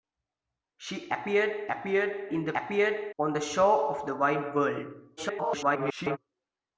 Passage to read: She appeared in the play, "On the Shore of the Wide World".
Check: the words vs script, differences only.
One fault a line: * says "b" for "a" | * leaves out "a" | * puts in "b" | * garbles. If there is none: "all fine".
* puts in "appeared"
* says "appeared" for "play"
* garbles